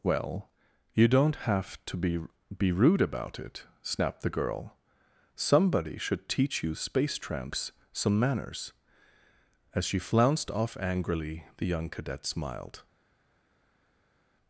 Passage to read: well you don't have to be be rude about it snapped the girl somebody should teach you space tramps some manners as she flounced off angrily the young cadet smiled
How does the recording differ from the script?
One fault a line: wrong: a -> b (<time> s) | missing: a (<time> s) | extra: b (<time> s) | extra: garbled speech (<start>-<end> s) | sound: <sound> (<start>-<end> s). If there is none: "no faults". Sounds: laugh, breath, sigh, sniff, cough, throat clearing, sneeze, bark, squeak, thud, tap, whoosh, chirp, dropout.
no faults